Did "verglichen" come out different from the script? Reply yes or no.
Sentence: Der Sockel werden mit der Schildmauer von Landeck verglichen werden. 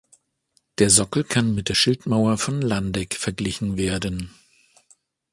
no